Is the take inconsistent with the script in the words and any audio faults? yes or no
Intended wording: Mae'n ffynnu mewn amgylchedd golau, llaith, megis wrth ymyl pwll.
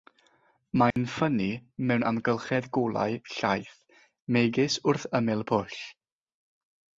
yes